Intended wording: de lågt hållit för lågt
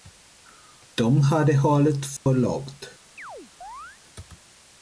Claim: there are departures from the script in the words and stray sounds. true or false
true